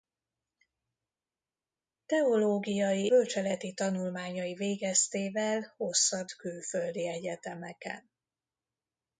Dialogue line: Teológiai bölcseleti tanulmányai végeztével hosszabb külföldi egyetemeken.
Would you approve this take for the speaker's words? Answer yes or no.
yes